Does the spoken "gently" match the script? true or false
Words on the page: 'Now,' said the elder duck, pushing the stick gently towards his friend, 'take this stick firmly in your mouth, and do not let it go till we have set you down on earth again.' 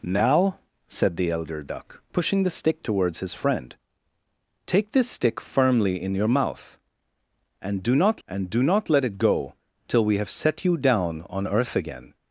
false